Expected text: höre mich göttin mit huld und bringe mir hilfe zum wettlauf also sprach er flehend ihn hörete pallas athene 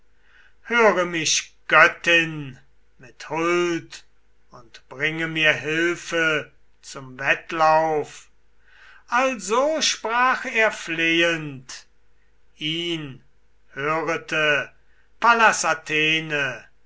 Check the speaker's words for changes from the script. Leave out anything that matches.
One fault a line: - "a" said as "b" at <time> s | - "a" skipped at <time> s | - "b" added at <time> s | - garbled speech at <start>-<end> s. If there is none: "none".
none